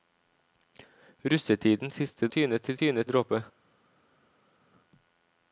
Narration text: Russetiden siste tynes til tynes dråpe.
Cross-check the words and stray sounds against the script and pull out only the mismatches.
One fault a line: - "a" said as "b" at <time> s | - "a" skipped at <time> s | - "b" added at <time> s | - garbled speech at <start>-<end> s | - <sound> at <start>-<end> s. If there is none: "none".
none